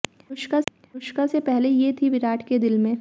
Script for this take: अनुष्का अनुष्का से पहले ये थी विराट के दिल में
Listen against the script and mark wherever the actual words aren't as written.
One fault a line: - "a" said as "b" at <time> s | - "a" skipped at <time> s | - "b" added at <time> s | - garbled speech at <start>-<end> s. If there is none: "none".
none